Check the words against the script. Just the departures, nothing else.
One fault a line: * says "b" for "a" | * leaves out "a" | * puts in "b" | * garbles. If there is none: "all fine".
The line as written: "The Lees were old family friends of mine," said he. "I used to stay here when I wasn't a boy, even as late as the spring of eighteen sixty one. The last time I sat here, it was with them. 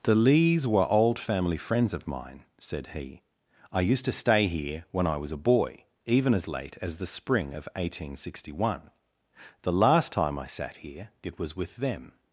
* says "was" for "wasn't"